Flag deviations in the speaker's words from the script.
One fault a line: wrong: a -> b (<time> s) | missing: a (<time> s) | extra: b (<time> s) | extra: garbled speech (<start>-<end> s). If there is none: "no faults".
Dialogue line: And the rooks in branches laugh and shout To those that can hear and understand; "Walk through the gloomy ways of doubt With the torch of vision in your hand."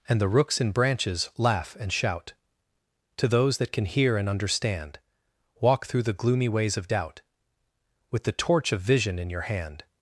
no faults